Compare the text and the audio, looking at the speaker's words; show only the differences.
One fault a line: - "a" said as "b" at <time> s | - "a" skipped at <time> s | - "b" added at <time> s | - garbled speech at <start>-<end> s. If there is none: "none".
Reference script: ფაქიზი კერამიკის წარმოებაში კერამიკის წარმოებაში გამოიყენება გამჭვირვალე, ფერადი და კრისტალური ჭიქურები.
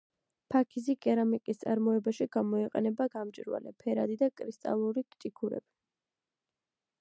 - "კერამიკის წარმოებაში" skipped at 2.3 s